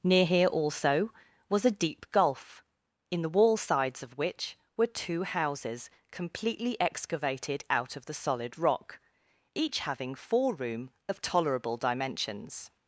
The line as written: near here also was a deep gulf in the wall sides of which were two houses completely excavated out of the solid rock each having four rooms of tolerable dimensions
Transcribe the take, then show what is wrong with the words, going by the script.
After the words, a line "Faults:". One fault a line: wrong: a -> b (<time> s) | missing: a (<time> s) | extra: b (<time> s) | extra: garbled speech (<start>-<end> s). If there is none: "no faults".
near here also was a deep gulf in the wall sides of which were two houses completely excavated out of the solid rock each having four room of tolerable dimensions
Faults:
wrong: rooms -> room (10.5 s)